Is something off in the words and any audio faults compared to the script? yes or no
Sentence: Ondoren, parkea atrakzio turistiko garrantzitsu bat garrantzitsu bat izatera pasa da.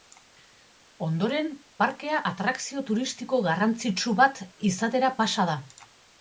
yes